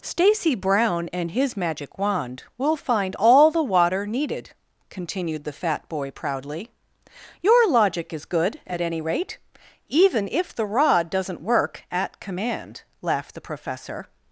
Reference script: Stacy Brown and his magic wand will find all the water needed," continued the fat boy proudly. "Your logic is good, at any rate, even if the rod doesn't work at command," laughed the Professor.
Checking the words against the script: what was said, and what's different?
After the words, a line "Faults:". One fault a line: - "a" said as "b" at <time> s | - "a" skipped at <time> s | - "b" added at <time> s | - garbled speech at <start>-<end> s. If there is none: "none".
Stacy Brown and his magic wand will find all the water needed," continued the fat boy proudly. "Your logic is good, at any rate, even if the rod doesn't work at command," laughed the Professor.
Faults:
none